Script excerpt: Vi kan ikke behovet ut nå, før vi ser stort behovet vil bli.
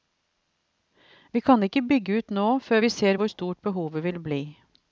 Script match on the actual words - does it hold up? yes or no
no